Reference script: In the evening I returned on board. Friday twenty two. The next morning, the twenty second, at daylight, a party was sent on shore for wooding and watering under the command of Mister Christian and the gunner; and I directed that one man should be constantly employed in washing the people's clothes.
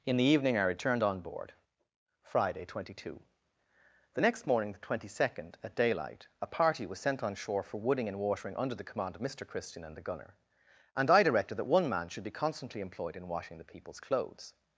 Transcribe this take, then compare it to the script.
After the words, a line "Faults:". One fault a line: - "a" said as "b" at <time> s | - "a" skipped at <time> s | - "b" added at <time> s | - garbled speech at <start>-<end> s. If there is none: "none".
In the evening I returned on board. Friday twenty two. The next morning, the twenty second, at daylight, a party was sent on shore for wooding and watering under the command of Mister Christian and the gunner; and I directed that one man should be constantly employed in washing the people's clothes.
Faults:
none